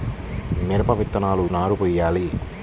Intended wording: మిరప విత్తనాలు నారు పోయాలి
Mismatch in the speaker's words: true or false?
false